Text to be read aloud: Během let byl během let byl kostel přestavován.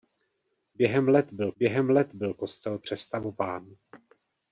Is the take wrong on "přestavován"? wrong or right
right